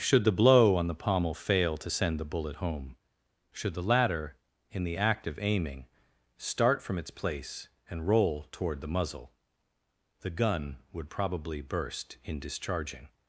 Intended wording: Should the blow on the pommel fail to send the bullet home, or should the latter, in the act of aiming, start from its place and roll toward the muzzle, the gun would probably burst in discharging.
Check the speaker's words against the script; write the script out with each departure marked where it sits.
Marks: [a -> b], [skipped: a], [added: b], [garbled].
Should the blow on the pommel fail to send the bullet home, [skipped: or] should the latter, in the act of aiming, start from its place and roll toward the muzzle, the gun would probably burst in discharging.